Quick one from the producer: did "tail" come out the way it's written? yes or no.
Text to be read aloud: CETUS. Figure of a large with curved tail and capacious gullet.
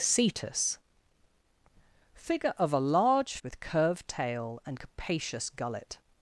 yes